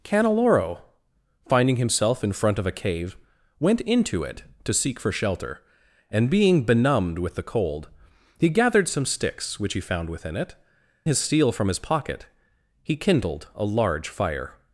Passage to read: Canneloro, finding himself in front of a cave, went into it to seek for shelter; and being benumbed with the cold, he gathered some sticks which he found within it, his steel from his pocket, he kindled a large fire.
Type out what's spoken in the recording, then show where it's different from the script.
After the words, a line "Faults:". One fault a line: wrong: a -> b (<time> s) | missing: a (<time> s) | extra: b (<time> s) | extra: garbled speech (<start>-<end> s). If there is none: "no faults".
Canneloro, finding himself in front of a cave, went into it to seek for shelter; and being benumbed with the cold, he gathered some sticks which he found within it, his steel from his pocket, he kindled a large fire.
Faults:
no faults